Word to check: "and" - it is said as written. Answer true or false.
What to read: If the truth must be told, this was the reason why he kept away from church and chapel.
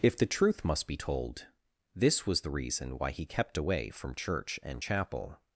true